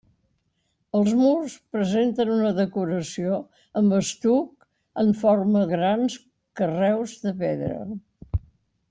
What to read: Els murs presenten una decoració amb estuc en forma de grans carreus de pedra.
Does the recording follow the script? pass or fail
fail